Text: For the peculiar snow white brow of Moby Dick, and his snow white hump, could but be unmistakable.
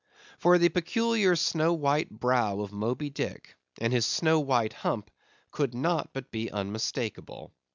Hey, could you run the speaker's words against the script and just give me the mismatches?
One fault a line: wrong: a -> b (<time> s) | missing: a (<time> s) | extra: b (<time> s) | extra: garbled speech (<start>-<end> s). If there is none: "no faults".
extra: not (5.8 s)